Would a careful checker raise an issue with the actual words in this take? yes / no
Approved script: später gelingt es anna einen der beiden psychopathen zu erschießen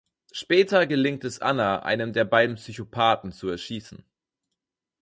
no